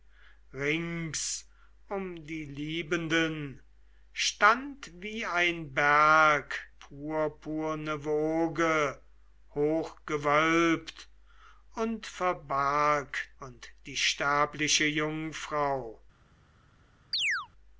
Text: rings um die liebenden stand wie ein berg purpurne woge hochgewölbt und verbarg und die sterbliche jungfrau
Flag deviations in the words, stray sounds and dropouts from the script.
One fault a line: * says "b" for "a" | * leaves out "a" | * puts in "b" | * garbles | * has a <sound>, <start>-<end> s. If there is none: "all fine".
* has a chirp, 17.1-17.5 s